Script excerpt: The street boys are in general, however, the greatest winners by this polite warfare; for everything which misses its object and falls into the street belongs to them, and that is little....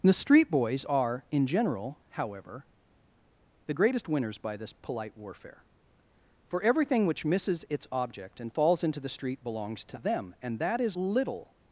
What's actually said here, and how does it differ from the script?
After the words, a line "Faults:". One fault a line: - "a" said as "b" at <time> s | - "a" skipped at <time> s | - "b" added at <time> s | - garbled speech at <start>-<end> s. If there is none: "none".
The street boys are in general, however, the greatest winners by this polite warfare; for everything which misses its object and falls into the street belongs to them, and that is little....
Faults:
none